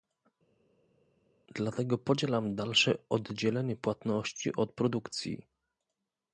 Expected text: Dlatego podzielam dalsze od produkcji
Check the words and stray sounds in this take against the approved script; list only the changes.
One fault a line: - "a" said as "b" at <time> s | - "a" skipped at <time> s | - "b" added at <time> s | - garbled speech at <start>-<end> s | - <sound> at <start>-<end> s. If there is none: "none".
- "oddzielenie płatności" added at 3.1 s